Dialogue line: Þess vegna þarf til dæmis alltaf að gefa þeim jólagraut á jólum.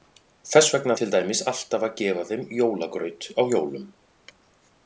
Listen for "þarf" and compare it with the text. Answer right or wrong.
wrong